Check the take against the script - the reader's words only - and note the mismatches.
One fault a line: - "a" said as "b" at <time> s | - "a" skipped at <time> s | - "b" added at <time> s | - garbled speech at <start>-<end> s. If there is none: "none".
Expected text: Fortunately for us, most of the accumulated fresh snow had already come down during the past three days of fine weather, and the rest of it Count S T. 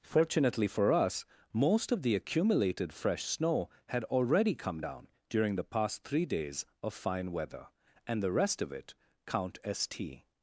none